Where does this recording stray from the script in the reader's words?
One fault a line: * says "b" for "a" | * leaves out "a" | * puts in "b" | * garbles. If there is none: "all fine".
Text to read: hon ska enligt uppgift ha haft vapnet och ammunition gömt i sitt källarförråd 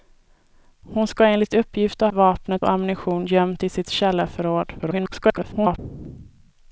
* leaves out "haft"
* garbles